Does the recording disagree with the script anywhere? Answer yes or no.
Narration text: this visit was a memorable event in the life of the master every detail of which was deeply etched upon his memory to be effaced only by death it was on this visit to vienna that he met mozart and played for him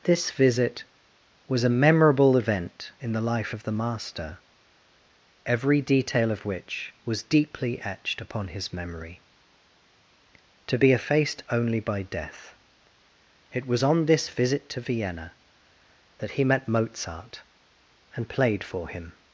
no